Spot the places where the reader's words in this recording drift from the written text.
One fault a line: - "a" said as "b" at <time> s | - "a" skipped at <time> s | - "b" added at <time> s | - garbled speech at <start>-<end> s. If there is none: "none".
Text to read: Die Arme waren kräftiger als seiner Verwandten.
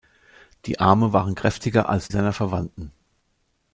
none